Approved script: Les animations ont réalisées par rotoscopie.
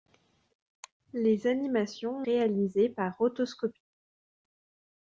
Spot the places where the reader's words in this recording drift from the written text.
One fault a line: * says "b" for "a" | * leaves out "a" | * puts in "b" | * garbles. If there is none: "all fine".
all fine